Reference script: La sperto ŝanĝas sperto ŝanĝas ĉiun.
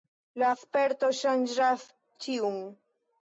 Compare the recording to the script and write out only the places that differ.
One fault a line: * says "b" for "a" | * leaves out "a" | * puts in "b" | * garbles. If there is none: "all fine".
* leaves out "sperto ŝanĝas"